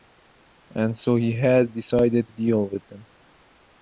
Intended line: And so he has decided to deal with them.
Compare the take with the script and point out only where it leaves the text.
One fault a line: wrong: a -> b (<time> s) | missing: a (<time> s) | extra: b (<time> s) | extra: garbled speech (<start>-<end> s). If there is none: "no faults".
missing: to (2.3 s)